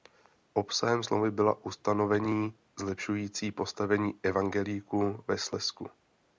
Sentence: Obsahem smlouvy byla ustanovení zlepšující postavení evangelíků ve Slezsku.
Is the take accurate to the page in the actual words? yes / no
yes